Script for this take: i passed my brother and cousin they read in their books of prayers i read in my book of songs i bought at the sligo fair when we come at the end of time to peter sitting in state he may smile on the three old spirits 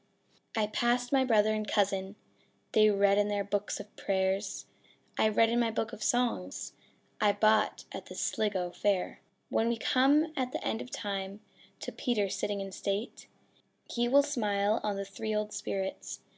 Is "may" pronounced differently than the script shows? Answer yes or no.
yes